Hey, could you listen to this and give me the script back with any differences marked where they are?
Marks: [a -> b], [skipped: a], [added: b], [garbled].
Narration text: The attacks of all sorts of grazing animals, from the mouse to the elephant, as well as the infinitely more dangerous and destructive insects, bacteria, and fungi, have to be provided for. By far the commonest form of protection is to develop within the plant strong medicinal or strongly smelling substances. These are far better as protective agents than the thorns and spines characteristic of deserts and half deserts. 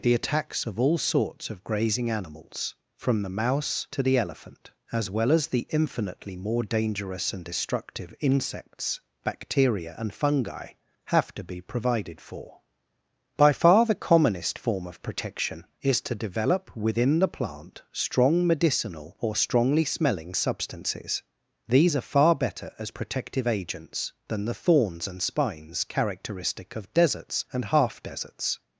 The attacks of all sorts of grazing animals, from the mouse to the elephant, as well as the infinitely more dangerous and destructive insects, bacteria, and fungi, have to be provided for. By far the commonest form of protection is to develop within the plant strong medicinal or strongly smelling substances. These are far better as protective agents than the thorns and spines characteristic of deserts and half deserts.